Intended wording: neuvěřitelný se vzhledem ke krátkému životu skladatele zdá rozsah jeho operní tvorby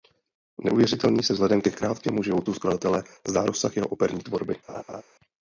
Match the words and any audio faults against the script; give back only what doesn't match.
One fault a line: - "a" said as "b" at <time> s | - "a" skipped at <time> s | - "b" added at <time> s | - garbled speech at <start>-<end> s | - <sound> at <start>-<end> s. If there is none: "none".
- laugh at 4.7-5.0 s